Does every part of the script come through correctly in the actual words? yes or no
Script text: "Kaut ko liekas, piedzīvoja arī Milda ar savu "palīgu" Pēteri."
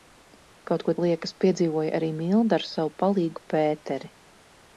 yes